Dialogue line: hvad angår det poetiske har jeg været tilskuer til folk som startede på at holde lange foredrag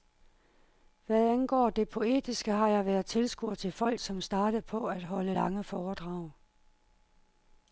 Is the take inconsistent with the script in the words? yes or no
no